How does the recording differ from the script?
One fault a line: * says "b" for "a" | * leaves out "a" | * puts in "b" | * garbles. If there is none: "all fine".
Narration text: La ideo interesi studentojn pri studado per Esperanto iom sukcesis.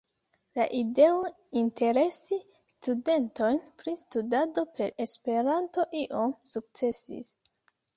all fine